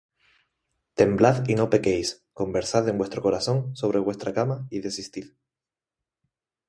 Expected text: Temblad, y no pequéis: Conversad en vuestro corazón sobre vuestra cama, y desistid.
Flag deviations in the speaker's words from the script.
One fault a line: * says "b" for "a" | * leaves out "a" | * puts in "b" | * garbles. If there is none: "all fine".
all fine